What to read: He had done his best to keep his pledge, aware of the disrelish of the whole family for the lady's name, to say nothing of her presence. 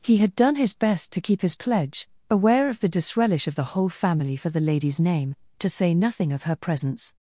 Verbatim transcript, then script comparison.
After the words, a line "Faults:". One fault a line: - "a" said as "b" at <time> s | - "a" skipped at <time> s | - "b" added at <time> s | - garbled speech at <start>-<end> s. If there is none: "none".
He had done his best to keep his pledge, aware of the disrelish of the whole family for the lady's name, to say nothing of her presence.
Faults:
none